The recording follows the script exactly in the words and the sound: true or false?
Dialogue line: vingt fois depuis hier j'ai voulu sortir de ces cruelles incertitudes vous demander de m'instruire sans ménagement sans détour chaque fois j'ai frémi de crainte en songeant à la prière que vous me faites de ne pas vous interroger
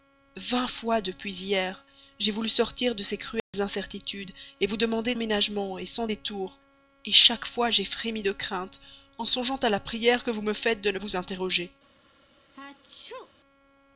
false